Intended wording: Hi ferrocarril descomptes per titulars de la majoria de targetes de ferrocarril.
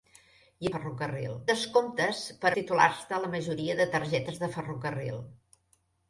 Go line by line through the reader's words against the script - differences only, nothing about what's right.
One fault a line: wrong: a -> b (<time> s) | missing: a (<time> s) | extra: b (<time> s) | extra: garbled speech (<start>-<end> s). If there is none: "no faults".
no faults